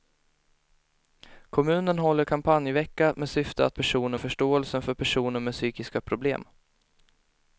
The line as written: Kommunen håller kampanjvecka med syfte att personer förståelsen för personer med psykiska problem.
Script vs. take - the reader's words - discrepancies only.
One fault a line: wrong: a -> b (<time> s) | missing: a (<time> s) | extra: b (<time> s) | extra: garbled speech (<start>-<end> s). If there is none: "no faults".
no faults